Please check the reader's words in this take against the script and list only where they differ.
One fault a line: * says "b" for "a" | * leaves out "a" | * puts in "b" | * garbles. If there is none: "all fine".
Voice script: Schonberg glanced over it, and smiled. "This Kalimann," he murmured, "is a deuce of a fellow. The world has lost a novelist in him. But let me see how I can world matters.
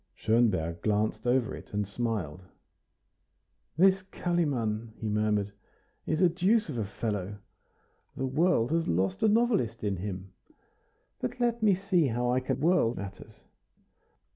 all fine